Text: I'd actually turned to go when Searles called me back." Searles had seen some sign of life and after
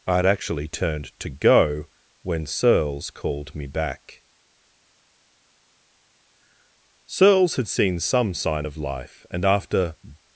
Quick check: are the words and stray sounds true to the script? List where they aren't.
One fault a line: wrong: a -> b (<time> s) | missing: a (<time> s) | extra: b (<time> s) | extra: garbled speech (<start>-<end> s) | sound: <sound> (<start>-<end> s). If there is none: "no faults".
no faults